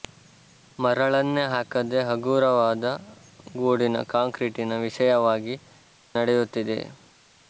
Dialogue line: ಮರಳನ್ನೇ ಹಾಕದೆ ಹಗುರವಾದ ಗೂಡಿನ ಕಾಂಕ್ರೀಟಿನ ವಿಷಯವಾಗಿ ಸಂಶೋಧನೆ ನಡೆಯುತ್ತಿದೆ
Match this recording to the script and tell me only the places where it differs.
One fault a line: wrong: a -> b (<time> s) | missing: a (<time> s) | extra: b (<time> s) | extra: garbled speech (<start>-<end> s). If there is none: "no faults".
missing: ಸಂಶೋಧನೆ (5.5 s)